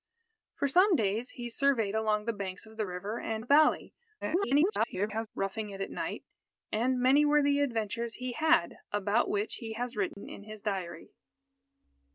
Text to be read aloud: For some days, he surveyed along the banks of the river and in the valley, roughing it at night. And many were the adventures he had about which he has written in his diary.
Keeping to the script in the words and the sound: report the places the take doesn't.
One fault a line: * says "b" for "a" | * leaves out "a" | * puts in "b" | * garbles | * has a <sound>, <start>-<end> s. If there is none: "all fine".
* leaves out "in"
* garbles
* has a dropout, 10.1-10.2 s